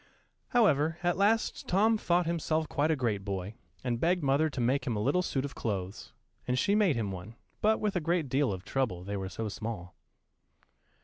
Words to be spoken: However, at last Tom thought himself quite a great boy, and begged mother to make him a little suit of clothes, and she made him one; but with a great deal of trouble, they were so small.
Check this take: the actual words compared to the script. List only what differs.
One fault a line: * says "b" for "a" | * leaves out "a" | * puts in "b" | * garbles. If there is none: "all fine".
all fine